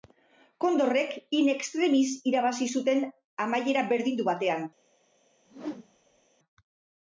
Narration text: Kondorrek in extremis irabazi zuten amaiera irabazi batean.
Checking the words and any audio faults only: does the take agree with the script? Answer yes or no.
no